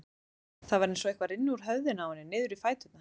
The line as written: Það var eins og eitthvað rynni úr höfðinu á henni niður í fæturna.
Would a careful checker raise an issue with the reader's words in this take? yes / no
no